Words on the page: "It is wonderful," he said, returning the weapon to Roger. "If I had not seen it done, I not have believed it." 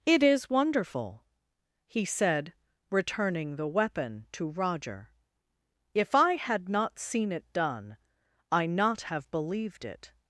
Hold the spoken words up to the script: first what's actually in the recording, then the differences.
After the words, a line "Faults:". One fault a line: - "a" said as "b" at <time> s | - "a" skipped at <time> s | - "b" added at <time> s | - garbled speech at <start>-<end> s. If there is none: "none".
"It is wonderful," he said, returning the weapon to Roger. "If I had not seen it done, I not have believed it."
Faults:
none